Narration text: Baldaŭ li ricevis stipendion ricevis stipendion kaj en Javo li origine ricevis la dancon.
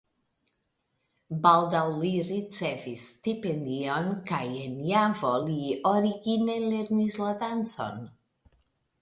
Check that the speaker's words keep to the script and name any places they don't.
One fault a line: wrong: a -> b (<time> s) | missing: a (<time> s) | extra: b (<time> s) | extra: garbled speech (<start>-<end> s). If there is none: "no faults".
missing: ricevis stipendion (4.1 s)
wrong: ricevis -> lernis (6.7 s)